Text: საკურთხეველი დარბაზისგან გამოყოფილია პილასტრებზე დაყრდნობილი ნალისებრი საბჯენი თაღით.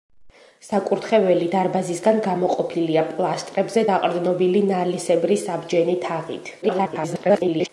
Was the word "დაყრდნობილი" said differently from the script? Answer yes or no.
no